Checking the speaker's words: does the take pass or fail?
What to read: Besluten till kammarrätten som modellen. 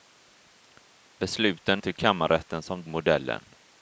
pass